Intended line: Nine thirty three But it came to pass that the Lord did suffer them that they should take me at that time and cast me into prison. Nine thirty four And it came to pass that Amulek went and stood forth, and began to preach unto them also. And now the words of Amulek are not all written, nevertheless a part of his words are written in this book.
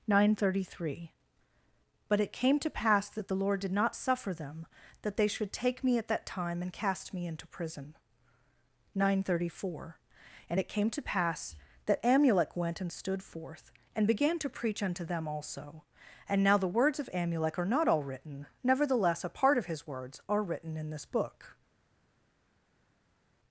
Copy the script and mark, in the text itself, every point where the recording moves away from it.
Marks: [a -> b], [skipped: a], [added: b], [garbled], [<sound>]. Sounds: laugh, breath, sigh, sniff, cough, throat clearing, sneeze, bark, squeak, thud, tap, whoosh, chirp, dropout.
Nine thirty three But it came to pass that the Lord did [added: not] suffer them that they should take me at that time and cast me into prison. Nine thirty four And it came to pass that Amulek went and stood forth, and began to preach unto them also. And now the words of Amulek are not all written, nevertheless a part of his words are written in this book.